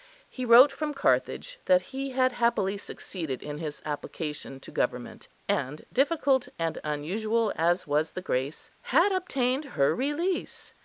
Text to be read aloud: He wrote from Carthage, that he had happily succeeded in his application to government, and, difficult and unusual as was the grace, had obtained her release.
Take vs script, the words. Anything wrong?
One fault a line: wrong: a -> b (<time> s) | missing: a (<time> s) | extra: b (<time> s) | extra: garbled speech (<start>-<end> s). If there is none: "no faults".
no faults